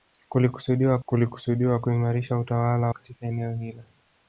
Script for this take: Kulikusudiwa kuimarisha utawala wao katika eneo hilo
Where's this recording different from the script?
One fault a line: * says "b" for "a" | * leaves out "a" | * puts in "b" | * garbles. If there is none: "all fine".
* puts in "kulikusudiwa"
* leaves out "wao"